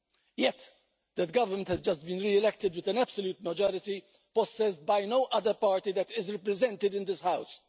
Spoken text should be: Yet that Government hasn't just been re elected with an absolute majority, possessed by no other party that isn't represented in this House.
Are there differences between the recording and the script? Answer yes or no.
yes